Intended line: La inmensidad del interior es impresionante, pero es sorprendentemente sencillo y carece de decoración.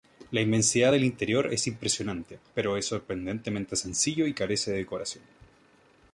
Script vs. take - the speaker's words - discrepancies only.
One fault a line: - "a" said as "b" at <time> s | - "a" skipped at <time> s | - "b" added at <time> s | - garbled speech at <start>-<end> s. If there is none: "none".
none